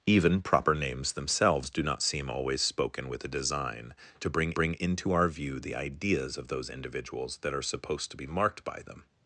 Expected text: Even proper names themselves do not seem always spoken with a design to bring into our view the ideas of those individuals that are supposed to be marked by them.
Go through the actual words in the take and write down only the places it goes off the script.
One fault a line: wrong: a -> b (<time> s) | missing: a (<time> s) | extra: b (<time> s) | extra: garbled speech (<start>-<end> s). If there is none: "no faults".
extra: bring (4.5 s)